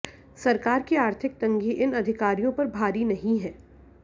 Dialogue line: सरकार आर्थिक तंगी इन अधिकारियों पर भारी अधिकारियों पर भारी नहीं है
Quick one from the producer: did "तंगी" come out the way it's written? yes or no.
yes